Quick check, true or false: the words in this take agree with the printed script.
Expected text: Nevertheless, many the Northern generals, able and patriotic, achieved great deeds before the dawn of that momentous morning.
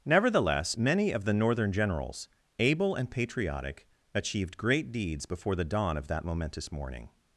false